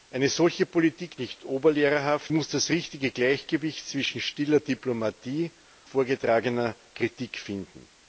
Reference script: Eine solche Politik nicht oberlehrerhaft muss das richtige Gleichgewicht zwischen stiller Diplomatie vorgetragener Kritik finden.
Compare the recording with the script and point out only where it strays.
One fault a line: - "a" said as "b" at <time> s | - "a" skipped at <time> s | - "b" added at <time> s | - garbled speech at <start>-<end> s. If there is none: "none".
none